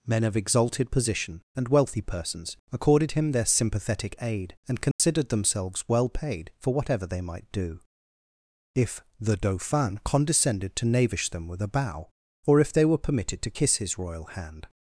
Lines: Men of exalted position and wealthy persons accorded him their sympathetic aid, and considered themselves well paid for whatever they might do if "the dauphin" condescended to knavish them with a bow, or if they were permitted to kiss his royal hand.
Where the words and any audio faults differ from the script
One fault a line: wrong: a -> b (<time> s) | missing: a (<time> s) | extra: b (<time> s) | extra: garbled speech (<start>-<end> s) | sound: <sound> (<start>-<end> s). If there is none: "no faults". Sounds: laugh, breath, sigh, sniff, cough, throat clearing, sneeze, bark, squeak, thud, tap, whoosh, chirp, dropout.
sound: dropout (4.9-5.0 s)